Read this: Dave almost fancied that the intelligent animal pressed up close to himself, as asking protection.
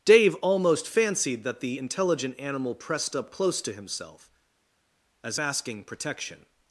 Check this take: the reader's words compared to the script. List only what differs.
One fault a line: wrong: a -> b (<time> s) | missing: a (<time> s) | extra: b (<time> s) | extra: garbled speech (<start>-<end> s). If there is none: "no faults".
no faults